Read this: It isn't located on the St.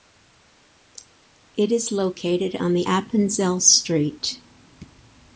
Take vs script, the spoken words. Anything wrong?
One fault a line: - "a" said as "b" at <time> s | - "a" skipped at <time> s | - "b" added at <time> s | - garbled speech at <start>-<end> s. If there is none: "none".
- "isn't" said as "is" at 1.7 s
- "Appenzell" added at 2.8 s